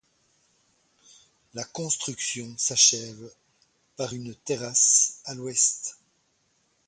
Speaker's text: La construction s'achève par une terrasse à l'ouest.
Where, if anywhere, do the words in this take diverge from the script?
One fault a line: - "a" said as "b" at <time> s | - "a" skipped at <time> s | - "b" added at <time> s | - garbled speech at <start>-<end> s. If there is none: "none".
none